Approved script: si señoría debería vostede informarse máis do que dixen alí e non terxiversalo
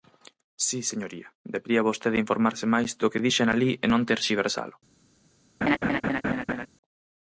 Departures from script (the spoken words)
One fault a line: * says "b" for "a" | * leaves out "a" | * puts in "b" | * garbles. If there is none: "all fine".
all fine